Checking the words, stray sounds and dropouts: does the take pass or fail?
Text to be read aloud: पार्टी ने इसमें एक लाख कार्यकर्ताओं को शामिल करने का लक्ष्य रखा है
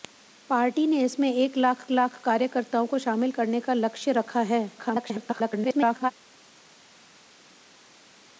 fail